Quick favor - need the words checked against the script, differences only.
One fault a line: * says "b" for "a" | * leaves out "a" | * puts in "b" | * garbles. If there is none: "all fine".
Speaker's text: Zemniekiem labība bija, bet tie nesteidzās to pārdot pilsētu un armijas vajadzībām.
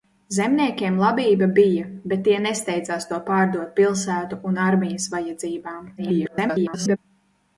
* garbles